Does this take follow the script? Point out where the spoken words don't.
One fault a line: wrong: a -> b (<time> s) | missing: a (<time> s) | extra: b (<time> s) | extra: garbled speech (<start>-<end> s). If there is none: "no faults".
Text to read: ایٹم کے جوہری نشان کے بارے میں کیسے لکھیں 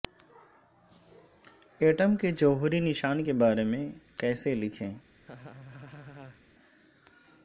no faults